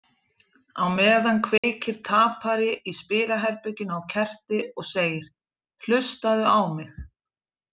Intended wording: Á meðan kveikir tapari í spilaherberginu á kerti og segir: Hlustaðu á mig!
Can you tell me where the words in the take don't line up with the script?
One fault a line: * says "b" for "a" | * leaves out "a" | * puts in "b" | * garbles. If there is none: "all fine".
all fine